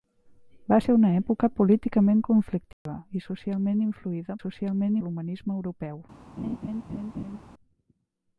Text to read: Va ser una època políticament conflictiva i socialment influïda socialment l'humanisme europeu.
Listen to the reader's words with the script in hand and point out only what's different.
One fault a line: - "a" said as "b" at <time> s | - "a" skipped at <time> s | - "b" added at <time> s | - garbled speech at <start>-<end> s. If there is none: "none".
none